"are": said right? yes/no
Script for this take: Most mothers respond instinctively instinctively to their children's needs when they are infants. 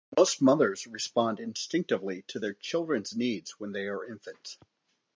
yes